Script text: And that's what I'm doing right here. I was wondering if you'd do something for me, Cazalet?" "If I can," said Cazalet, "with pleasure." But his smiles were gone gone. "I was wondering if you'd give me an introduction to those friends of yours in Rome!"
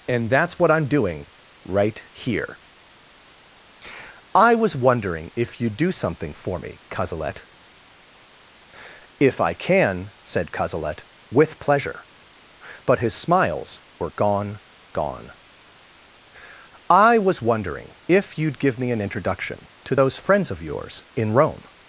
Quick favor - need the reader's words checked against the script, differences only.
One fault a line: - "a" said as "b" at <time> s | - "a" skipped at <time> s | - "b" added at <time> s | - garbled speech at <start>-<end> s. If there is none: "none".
none